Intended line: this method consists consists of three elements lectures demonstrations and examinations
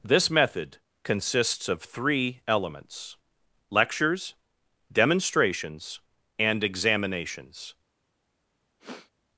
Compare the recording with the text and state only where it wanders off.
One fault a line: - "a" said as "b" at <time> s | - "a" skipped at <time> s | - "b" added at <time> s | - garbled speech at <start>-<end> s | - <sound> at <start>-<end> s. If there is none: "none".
- "consists" skipped at 1.7 s
- sniff at 8.8-9.1 s